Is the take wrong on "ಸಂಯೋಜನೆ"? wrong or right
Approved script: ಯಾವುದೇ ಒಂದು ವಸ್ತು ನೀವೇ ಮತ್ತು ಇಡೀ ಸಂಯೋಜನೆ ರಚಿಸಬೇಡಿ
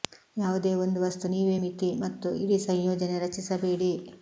right